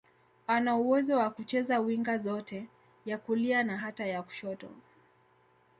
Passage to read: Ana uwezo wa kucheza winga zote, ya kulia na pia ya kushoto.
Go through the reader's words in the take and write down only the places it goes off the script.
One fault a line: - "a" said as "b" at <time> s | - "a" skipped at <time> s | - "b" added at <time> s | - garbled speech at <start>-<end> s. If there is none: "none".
- "pia" said as "hata" at 3.8 s